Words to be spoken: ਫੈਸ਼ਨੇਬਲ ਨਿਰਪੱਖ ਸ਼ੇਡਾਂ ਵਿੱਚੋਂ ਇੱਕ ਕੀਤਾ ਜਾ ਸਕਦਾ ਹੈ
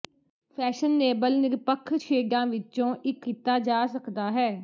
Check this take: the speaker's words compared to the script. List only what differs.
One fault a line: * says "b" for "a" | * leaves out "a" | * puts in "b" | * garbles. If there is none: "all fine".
all fine